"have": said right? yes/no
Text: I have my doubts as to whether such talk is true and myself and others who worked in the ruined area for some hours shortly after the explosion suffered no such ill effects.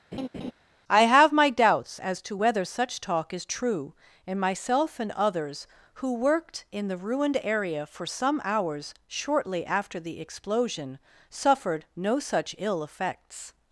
yes